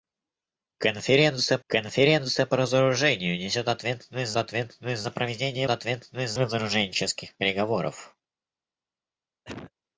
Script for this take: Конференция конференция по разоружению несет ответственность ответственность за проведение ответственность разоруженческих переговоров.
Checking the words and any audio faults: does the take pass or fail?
fail